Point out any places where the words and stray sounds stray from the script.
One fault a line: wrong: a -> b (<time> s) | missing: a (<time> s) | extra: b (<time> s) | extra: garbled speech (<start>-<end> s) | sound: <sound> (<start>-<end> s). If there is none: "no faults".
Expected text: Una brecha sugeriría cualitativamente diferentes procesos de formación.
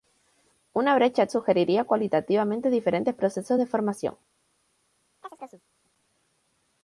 sound: chirp (5.2-5.7 s)